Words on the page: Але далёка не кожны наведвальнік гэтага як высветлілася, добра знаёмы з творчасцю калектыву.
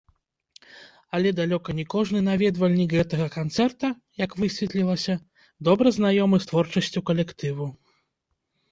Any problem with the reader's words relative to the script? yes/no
yes